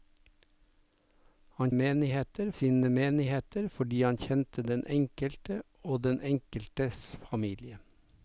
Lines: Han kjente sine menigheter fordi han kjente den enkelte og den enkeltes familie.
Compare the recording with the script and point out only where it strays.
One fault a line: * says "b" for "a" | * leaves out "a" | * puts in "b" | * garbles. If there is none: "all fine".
* says "menigheter" for "kjente"